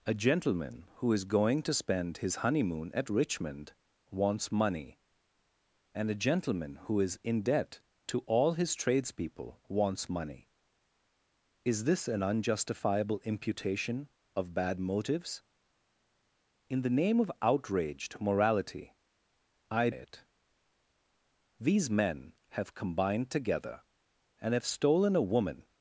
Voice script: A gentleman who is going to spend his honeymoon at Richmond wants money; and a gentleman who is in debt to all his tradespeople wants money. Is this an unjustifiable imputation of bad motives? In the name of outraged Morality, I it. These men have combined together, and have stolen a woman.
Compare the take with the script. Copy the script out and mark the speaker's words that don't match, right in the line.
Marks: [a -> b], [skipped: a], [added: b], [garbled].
A gentleman who is going to spend his honeymoon at Richmond wants money; and a gentleman who is in debt to all his tradespeople wants money. Is this an unjustifiable imputation of bad motives? In the name of outraged Morality, I it. These men have combined together, and have stolen a woman.